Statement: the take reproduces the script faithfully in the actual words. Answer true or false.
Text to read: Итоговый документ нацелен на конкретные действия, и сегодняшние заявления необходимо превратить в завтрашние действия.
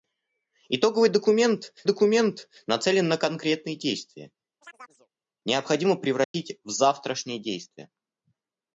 false